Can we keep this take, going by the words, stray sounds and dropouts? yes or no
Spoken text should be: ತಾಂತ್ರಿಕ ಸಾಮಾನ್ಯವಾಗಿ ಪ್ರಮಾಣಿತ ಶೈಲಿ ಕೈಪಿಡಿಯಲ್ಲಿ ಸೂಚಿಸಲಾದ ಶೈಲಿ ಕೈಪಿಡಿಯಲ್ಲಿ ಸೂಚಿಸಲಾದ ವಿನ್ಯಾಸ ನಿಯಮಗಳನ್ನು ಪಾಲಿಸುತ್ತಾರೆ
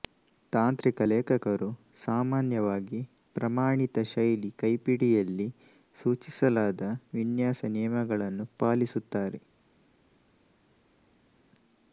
no